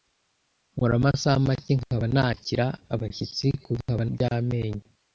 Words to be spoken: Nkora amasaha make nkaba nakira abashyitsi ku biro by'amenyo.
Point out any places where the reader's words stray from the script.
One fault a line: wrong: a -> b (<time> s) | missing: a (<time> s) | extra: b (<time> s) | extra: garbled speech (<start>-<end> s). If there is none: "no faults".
wrong: biro -> nkaba (3.8 s)